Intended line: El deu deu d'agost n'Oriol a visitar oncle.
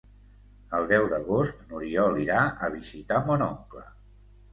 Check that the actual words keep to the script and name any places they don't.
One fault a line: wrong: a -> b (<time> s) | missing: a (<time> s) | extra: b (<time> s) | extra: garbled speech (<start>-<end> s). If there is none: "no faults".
missing: deu (1.0 s)
extra: irà (2.2 s)
extra: mon (3.3 s)